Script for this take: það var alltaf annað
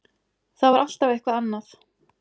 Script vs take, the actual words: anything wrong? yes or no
yes